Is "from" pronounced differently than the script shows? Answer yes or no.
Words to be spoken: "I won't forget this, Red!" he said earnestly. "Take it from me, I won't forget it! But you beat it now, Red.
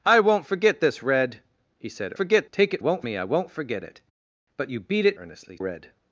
yes